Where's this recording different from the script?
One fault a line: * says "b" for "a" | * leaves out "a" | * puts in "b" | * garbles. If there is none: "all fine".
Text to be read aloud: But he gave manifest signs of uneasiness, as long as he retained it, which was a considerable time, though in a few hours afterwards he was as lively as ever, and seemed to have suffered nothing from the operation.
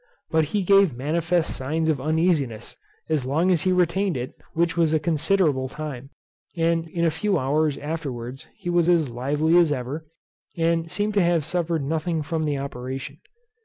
* says "and" for "though"